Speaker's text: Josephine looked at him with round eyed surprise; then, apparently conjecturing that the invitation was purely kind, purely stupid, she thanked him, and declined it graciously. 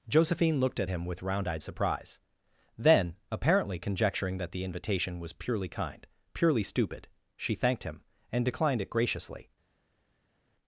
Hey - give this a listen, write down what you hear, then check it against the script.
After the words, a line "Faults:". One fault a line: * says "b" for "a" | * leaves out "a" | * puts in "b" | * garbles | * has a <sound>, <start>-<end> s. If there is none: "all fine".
Josephine looked at him with round eyed surprise; then, apparently conjecturing that the invitation was purely kind, purely stupid, she thanked him, and declined it graciously.
Faults:
all fine